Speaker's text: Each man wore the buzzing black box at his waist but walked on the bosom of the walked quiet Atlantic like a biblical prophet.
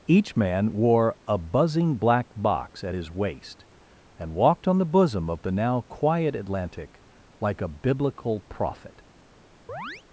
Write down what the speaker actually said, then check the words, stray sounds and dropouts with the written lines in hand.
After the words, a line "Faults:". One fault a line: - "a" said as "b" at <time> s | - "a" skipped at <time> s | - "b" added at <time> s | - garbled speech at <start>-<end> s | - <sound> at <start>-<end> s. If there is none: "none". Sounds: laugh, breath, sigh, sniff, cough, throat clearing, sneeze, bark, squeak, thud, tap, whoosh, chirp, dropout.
Each man wore a buzzing black box at his waist and walked on the bosom of the now quiet Atlantic like a biblical prophet.
Faults:
- "the" said as "a" at 1.3 s
- "but" said as "and" at 4.2 s
- "walked" said as "now" at 5.5 s
- chirp at 9.7-10.0 s